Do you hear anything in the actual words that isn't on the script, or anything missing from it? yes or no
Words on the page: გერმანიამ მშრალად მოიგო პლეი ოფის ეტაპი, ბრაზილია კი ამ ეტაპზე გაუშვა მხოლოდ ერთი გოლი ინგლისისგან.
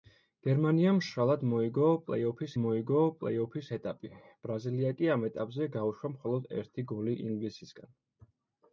yes